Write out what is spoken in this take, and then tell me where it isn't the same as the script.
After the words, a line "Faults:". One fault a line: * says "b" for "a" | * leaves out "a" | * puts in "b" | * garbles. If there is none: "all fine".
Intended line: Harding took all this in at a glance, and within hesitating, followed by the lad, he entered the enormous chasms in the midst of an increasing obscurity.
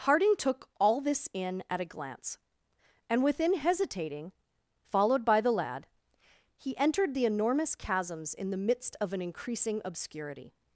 Harding took all this in at a glance, and within hesitating, followed by the lad, he entered the enormous chasms in the midst of an increasing obscurity.
Faults:
all fine